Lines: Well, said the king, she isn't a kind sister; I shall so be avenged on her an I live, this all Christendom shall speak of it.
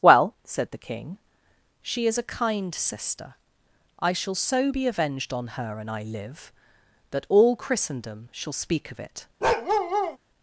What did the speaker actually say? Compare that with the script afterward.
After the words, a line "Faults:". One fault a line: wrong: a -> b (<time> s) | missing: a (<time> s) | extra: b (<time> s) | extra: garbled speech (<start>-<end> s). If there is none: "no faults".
Well, said the king, she is a kind sister; I shall so be avenged on her an I live, that all Christendom shall speak of it.
Faults:
wrong: isn't -> is (2.1 s)
wrong: this -> that (7.1 s)